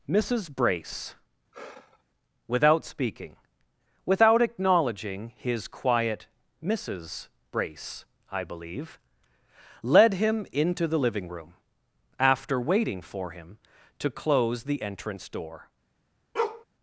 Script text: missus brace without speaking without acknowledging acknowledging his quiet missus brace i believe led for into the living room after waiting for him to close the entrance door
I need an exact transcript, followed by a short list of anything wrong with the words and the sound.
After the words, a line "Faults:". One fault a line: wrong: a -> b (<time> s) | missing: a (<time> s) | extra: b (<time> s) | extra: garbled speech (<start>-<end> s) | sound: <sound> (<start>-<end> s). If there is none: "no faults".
missus brace without speaking without acknowledging his quiet missus brace i believe led him into the living room after waiting for him to close the entrance door
Faults:
sound: sigh (1.5-2.0 s)
missing: acknowledging (5.3 s)
wrong: for -> him (10.1 s)
sound: bark (16.3-16.6 s)